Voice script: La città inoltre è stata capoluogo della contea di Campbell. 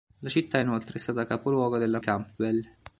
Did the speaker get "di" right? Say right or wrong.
wrong